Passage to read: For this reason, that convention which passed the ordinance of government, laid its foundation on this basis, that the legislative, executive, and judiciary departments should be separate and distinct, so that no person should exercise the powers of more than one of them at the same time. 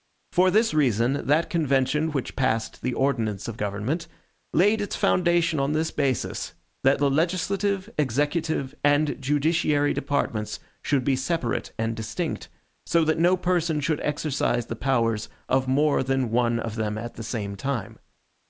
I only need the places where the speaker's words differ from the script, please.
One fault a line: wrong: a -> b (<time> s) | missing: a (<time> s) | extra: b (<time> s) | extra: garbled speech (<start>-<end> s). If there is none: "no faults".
no faults